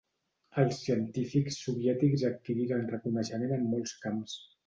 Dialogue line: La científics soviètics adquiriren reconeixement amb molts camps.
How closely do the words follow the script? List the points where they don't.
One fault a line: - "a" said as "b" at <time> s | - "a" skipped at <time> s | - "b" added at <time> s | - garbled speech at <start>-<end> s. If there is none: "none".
- "La" said as "Els" at 0.6 s
- "amb" said as "en" at 3.6 s